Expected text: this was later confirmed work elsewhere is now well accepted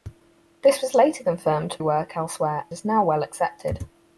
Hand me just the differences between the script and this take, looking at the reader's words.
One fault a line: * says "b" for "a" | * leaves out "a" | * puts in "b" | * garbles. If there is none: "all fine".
all fine